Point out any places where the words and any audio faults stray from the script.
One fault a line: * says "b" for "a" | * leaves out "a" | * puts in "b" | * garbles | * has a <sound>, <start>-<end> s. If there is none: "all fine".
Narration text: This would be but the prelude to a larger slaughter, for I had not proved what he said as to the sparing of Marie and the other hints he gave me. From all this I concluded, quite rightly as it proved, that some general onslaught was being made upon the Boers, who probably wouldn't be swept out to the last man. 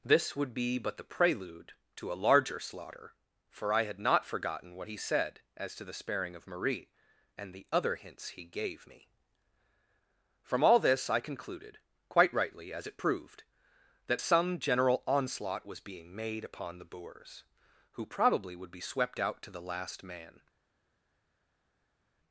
* says "forgotten" for "proved"
* says "would" for "wouldn't"